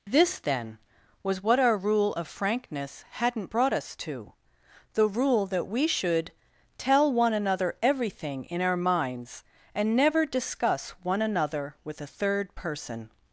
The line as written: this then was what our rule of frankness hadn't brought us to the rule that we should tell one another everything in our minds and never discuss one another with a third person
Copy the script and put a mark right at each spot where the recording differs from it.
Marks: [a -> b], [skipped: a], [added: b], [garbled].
this then was what our rule of frankness hadn't brought us to the rule that we should tell one another everything in our minds and never discuss one another with a third person